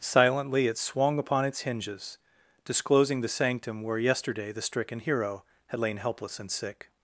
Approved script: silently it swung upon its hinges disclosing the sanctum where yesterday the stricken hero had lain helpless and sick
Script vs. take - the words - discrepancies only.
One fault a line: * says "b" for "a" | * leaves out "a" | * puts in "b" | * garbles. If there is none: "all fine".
all fine